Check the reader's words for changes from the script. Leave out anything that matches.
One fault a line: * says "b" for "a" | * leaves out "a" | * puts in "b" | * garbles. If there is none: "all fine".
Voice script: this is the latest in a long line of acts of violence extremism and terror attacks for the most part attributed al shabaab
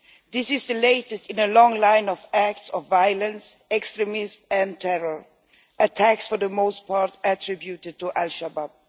* puts in "to"